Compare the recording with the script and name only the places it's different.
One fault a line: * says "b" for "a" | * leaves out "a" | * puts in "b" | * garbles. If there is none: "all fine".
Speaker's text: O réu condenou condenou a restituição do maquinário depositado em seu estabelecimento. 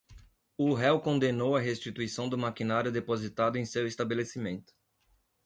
* leaves out "condenou"